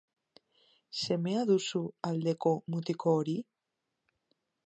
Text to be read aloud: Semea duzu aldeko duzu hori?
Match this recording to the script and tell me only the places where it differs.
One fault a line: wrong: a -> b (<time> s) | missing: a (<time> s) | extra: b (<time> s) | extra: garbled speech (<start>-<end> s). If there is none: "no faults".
wrong: duzu -> mutiko (2.7 s)